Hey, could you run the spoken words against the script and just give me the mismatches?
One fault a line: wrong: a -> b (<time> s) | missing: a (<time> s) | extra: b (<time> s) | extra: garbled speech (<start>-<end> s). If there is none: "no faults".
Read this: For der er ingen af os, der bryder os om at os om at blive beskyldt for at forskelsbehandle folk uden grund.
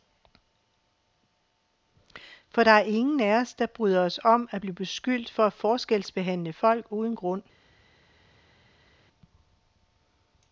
missing: os om at (4.6 s)